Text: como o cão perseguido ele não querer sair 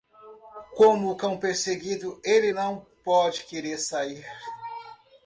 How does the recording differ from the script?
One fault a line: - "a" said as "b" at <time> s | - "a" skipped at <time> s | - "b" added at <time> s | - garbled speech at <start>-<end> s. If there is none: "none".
- "pode" added at 3.0 s